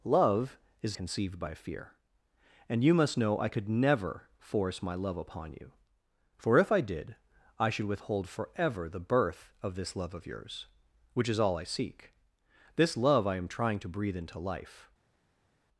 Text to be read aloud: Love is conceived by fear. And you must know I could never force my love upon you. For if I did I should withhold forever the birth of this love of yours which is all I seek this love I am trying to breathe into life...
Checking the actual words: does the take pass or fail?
pass